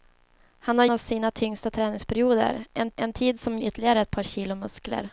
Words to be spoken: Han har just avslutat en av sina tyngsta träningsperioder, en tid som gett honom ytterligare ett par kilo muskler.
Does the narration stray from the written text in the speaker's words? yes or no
yes